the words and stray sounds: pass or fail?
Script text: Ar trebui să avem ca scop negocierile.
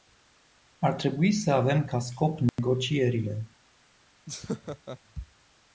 fail